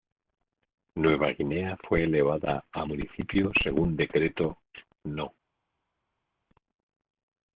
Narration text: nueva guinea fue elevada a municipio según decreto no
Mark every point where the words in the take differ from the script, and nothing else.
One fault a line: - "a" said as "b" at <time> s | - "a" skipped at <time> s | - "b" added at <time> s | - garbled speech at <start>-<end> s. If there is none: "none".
none